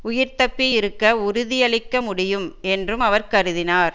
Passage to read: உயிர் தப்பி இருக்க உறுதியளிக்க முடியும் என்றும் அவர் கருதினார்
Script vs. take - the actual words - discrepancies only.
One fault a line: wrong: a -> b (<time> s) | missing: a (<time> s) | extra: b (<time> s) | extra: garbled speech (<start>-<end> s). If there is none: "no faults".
no faults